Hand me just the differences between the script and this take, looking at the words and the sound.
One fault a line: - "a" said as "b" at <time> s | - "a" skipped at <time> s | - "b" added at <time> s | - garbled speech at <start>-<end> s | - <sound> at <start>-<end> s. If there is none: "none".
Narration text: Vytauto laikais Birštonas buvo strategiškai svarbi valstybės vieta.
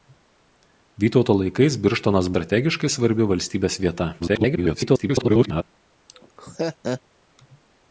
- "buvo" skipped at 2.3 s
- garbled speech at 4.2-5.6 s
- laugh at 6.1-7.0 s